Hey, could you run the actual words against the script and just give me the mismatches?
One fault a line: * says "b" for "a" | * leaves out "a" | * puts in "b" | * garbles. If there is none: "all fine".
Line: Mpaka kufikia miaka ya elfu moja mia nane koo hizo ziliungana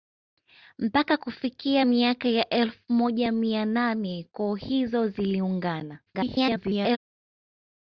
* garbles